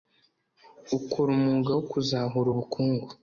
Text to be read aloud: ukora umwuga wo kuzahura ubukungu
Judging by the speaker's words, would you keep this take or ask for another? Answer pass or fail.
pass